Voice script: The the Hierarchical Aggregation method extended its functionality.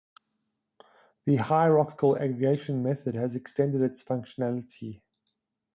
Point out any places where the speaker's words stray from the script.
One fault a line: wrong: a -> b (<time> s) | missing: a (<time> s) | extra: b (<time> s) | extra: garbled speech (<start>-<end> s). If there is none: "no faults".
missing: the (1.4 s)
extra: has (3.1 s)